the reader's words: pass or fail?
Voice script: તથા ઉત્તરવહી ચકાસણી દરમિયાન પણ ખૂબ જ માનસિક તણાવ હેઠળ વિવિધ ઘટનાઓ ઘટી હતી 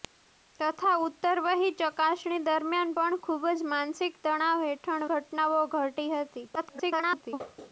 fail